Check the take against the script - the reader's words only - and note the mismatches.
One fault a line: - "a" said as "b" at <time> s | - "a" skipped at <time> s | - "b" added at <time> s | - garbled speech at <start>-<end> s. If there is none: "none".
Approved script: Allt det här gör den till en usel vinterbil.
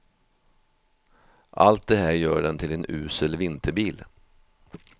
none